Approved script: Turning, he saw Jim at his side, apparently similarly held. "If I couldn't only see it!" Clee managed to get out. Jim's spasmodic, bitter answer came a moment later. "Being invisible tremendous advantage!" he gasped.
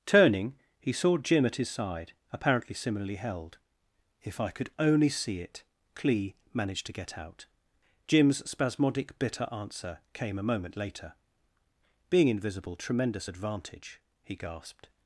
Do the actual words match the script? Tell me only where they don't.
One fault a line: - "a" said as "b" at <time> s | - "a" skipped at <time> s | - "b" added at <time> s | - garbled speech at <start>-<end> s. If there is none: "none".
- "couldn't" said as "could" at 4.5 s